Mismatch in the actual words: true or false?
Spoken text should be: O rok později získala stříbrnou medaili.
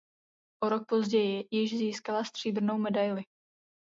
true